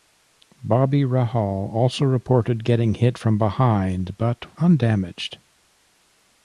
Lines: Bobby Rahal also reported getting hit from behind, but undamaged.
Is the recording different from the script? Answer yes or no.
no